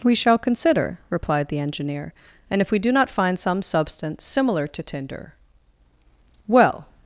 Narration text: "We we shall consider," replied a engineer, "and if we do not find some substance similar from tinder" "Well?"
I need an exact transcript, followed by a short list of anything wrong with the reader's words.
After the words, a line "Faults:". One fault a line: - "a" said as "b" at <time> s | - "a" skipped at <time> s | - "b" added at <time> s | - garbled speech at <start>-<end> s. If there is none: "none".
"We shall consider," replied the engineer, "and if we do not find some substance similar to tinder" "Well?"
Faults:
- "we" skipped at 0.1 s
- "a" said as "the" at 1.5 s
- "from" said as "to" at 4.7 s